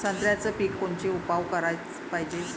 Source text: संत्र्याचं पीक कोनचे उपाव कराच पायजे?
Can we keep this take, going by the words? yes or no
yes